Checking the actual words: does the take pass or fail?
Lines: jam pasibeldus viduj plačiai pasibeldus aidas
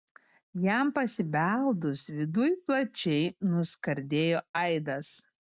fail